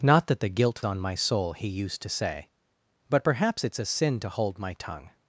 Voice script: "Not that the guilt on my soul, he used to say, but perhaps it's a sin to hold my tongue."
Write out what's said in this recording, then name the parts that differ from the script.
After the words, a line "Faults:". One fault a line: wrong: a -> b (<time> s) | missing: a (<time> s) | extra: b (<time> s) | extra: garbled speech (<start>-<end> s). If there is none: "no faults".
"Not that the guilt on my soul, he used to say, but perhaps it's a sin to hold my tongue."
Faults:
no faults